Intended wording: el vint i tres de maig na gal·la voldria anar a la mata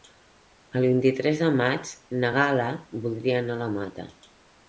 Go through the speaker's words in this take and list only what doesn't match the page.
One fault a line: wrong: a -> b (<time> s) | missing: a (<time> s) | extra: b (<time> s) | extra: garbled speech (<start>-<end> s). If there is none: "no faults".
no faults